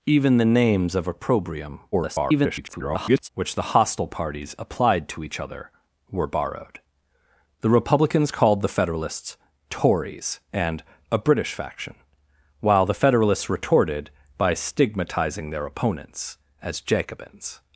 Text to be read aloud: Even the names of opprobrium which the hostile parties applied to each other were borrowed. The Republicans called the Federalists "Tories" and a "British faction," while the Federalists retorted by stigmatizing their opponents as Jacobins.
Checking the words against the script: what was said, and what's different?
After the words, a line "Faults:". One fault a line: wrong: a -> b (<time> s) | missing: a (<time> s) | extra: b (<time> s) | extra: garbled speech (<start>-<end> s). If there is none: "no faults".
Even the names of opprobrium [garbled] which the hostile parties applied to each other were borrowed. The Republicans called the Federalists "Tories" and a "British faction," while the Federalists retorted by stigmatizing their opponents as Jacobins.
Faults:
extra: garbled speech (1.9-3.3 s)